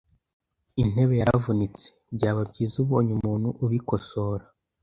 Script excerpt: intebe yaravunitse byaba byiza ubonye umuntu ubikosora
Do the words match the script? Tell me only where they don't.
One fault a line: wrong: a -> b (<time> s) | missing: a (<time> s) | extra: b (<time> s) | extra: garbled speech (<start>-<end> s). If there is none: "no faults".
no faults